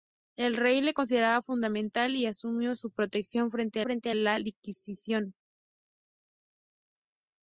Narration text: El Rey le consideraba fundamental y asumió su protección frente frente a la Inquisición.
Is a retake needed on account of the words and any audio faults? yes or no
no